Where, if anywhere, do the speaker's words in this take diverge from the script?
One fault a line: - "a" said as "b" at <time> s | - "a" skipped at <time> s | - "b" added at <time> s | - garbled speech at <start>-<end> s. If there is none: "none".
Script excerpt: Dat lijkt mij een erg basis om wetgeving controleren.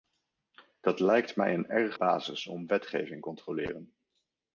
none